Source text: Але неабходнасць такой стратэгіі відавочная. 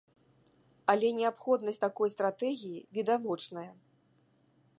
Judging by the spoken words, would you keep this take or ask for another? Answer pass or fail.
pass